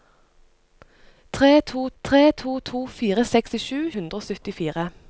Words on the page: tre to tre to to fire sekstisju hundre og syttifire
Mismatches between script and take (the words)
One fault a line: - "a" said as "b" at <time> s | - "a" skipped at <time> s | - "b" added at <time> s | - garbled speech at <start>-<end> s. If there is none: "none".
none